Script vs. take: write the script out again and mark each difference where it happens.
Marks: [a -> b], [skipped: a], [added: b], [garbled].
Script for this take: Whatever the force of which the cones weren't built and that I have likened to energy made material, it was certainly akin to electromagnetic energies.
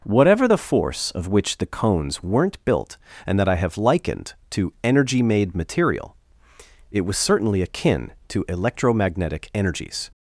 Whatever the force of which the cones weren't built and that I have likened to energy made material, it was certainly akin to electromagnetic energies.